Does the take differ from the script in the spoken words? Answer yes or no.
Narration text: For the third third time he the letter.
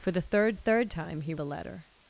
no